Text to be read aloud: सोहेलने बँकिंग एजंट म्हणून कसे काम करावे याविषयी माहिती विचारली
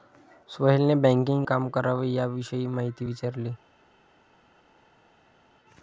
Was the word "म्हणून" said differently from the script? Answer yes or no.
yes